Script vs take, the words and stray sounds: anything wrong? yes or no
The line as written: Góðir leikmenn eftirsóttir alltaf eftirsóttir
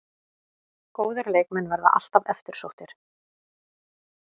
yes